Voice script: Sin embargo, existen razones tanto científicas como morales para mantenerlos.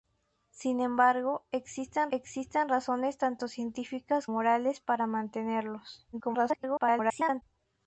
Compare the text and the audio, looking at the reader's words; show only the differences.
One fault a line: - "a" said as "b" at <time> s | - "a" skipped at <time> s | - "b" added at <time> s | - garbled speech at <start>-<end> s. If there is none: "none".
- "existen" added at 2.1 s
- "como" skipped at 4.3 s
- garbled speech at 6.1-7.4 s